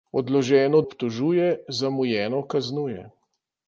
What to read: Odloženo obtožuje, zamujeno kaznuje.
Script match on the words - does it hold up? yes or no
yes